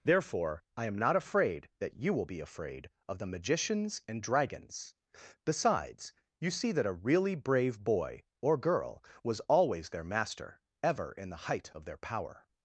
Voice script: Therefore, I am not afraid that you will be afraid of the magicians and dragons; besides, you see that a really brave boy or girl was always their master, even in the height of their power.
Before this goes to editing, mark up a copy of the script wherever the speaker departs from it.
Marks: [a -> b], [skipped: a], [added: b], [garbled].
Therefore, I am not afraid that you will be afraid of the magicians and dragons; besides, you see that a really brave boy or girl was always their master, [even -> ever] in the height of their power.